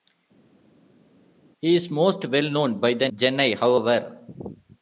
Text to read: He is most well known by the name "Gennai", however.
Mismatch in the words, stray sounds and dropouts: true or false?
true